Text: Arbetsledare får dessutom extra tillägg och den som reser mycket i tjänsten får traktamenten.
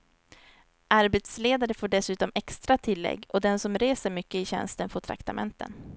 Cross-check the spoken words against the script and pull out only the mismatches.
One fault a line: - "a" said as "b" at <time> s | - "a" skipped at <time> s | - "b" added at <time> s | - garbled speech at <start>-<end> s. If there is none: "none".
none